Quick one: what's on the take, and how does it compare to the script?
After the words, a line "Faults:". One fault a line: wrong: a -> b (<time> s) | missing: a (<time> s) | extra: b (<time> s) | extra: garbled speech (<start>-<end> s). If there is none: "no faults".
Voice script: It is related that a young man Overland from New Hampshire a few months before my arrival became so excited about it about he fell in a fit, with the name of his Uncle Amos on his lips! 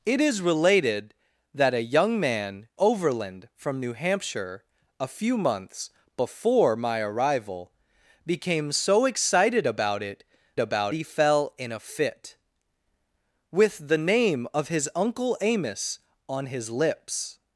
It is related that a young man Overland from New Hampshire a few months before my arrival became so excited about it about he fell in a fit, with the name of his Uncle Amos on his lips!
Faults:
no faults